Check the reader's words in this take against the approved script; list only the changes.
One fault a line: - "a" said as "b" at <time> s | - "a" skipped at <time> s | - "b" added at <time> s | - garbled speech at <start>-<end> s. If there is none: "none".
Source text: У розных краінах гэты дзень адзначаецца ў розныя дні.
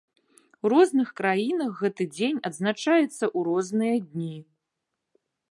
none